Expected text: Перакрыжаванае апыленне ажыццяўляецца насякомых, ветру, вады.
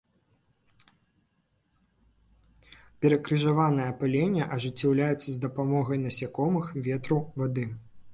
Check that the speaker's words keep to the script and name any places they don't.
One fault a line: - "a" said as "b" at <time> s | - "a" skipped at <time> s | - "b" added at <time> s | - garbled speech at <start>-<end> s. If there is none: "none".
- "з дапамогай" added at 5.3 s